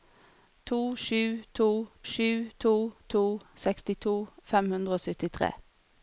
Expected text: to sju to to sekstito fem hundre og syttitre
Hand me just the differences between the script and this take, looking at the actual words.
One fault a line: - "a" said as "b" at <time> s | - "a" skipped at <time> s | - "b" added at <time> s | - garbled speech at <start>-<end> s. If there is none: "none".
- "sju to" added at 2.0 s